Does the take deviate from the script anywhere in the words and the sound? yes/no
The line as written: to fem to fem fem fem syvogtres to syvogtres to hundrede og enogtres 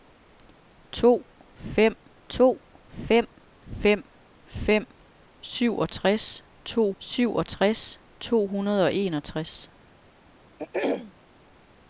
yes